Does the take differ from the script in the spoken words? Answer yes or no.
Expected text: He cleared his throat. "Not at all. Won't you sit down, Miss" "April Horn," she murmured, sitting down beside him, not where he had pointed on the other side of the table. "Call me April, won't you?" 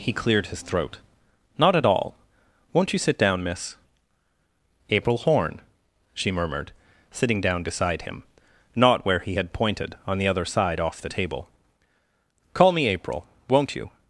yes